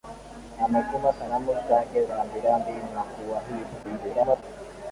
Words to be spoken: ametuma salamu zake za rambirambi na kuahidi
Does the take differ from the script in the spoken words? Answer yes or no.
yes